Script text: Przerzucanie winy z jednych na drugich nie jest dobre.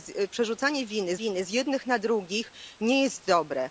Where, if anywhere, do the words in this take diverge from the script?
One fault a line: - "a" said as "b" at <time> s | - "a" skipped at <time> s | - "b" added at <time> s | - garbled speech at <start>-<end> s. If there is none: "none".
- "winy" added at 1.1 s